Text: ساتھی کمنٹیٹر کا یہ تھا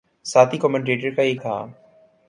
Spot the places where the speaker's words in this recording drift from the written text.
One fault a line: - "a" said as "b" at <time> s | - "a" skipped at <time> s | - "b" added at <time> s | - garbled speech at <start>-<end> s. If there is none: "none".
none